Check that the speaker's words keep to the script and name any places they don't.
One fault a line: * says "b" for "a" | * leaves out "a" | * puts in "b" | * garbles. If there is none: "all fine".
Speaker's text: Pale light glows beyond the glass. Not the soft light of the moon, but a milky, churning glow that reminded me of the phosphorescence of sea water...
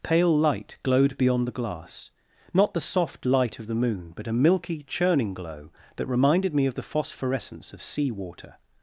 * says "glowed" for "glows"